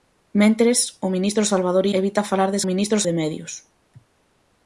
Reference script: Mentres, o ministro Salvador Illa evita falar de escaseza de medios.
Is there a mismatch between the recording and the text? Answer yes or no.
yes